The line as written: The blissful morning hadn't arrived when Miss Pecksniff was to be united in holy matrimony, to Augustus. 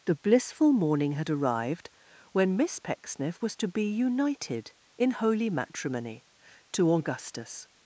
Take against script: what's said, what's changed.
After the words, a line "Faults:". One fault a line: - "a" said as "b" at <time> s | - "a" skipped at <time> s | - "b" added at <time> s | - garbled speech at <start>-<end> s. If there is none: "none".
The blissful morning had arrived when Miss Pecksniff was to be united in holy matrimony, to Augustus.
Faults:
- "hadn't" said as "had" at 1.1 s